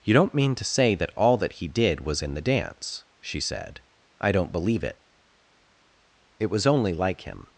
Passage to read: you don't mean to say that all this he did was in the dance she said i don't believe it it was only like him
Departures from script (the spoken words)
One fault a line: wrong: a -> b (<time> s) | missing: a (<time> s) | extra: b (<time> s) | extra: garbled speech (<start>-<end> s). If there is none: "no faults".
wrong: this -> that (1.4 s)